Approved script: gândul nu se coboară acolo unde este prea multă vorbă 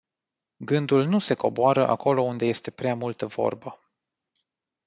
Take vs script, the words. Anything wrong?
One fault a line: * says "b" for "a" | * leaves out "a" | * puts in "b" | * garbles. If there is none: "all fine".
all fine